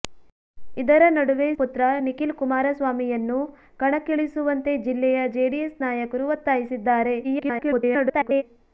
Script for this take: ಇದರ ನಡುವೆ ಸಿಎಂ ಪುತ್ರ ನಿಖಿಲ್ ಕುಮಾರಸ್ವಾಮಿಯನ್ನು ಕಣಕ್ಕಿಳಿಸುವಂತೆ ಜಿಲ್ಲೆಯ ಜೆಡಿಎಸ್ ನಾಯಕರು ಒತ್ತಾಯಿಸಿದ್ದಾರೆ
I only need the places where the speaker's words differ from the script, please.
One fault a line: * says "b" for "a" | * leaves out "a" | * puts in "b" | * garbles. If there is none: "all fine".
* leaves out "ಸಿಎಂ"
* garbles